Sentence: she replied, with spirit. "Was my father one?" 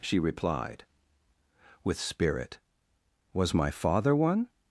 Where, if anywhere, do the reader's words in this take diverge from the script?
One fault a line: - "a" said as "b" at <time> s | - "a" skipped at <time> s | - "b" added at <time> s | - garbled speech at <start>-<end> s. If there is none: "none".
none